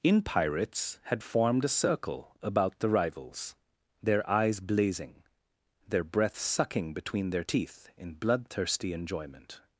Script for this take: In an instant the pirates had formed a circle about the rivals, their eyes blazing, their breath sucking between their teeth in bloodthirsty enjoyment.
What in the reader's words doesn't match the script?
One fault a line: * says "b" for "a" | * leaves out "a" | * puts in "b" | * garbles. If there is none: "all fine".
* leaves out "an instant the"